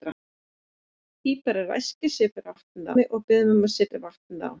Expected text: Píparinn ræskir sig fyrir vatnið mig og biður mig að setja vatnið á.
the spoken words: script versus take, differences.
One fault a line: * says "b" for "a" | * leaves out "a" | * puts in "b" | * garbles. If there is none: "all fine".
all fine